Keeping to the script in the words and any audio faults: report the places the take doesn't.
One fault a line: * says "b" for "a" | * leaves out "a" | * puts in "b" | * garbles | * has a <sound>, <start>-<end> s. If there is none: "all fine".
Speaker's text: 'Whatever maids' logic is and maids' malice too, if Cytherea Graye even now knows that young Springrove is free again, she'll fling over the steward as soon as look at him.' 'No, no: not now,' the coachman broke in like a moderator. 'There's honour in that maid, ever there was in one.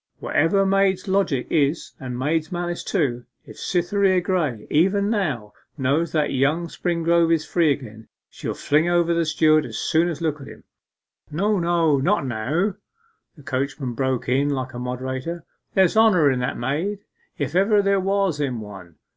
* puts in "if"